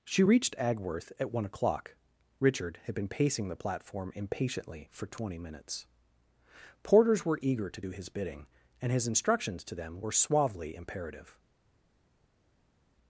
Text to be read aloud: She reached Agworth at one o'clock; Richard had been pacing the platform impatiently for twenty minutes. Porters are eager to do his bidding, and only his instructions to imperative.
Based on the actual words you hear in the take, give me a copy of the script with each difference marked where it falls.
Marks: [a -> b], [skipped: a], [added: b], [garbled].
She reached Agworth at one o'clock; Richard had been pacing the platform impatiently for twenty minutes. Porters [are -> were] eager to do his bidding, and [skipped: only] his instructions to [added: them were suavely] imperative.